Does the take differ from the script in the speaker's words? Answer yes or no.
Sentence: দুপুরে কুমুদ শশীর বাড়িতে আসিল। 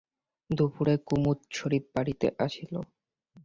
no